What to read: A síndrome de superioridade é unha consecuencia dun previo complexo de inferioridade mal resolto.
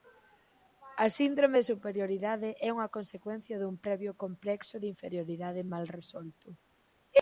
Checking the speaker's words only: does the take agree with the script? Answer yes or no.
yes